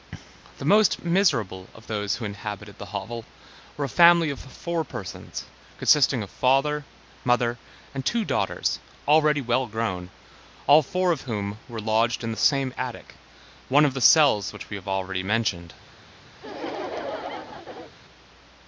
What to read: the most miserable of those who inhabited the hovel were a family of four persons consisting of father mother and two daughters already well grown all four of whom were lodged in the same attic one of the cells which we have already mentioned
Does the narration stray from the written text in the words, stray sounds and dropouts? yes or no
yes